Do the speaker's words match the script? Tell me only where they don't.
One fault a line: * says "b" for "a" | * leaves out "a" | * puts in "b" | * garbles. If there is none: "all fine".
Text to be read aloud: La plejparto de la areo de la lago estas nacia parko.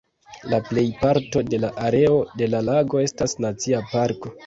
all fine